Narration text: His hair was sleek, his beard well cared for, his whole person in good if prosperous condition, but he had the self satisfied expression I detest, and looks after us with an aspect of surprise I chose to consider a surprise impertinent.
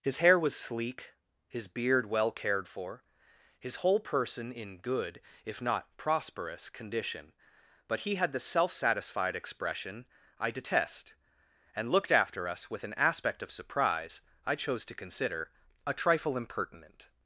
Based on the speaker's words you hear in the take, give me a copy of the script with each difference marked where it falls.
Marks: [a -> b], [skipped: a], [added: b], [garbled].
His hair was sleek, his beard well cared for, his whole person in good if [added: not] prosperous condition, but he had the self satisfied expression I detest, and [looks -> looked] after us with an aspect of surprise I chose to consider a [surprise -> trifle] impertinent.